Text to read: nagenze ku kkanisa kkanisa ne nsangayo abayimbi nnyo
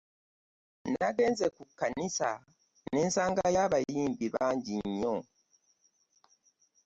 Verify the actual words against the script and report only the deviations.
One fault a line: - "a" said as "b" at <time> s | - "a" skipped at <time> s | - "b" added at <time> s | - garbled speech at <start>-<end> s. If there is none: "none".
- "kkanisa" skipped at 2.3 s
- "bangi" added at 4.3 s